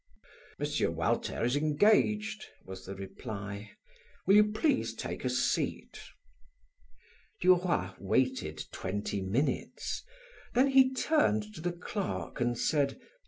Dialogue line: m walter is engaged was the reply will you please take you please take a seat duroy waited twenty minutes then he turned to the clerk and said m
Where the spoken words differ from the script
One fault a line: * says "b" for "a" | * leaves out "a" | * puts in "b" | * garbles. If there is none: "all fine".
* leaves out "you please take"